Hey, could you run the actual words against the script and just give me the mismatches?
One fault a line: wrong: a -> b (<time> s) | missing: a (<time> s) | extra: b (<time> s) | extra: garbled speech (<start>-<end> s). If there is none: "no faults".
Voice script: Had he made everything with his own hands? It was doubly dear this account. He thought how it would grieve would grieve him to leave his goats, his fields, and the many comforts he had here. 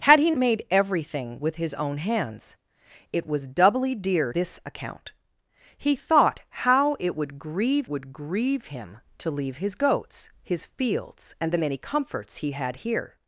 no faults